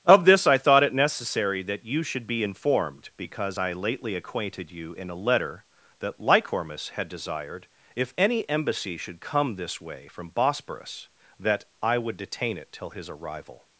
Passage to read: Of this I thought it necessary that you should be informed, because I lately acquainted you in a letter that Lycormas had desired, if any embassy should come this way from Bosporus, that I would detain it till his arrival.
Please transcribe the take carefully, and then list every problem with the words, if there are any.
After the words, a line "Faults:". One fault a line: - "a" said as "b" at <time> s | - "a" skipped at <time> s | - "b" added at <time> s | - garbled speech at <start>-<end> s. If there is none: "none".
Of this I thought it necessary that you should be informed, because I lately acquainted you in a letter that Lycormas had desired, if any embassy should come this way from Bosporus, that I would detain it till his arrival.
Faults:
none